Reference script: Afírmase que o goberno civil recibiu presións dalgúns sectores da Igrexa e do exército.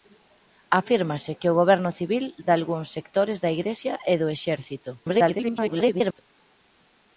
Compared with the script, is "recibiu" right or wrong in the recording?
wrong